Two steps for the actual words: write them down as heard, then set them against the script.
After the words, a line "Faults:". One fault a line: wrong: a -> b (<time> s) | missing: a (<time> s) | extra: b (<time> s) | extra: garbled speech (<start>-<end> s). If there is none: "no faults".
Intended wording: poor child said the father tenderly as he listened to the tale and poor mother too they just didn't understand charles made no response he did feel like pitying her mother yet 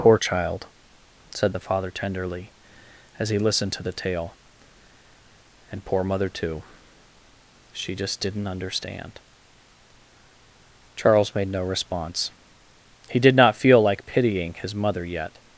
poor child said the father tenderly as he listened to the tale and poor mother too she just didn't understand charles made no response he did not feel like pitying his mother yet
Faults:
wrong: they -> she (7.7 s)
extra: not (13.3 s)
wrong: her -> his (14.6 s)